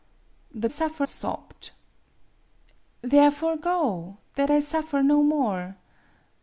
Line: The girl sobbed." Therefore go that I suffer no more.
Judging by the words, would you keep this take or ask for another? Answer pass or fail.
fail